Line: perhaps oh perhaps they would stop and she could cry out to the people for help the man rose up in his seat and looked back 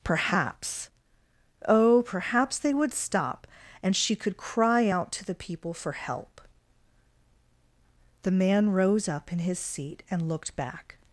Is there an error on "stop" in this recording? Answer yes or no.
no